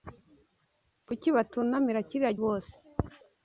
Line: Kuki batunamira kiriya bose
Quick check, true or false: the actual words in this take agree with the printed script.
true